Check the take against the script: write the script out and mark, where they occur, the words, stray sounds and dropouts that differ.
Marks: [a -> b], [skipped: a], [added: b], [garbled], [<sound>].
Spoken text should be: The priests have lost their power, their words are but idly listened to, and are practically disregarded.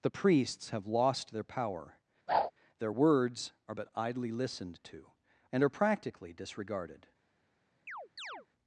The priests have lost their power, [whoosh] their words are but idly listened to, and are practically disregarded. [chirp]